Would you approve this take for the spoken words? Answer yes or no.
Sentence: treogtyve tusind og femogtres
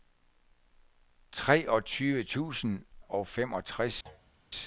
yes